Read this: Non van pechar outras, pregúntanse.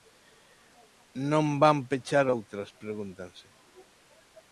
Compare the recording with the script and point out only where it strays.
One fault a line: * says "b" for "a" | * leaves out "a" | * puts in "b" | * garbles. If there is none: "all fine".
all fine